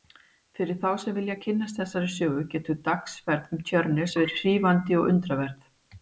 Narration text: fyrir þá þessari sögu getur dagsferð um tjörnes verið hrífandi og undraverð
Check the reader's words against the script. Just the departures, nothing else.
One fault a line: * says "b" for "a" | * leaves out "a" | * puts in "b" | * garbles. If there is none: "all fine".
* puts in "sem vilja kynnast"